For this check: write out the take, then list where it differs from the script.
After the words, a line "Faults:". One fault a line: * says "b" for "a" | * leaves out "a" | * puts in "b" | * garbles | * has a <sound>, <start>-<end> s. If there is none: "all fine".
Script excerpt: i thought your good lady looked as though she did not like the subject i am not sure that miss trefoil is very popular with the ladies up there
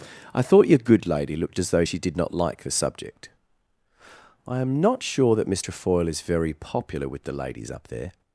i thought your good lady looked as though she did not like the subject i am not sure that miss trefoil is very popular with the ladies up there
Faults:
all fine